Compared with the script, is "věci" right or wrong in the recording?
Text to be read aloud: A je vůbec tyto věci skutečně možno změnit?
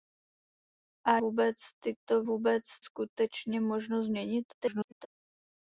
wrong